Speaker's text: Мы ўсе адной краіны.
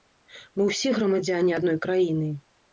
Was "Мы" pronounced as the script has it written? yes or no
yes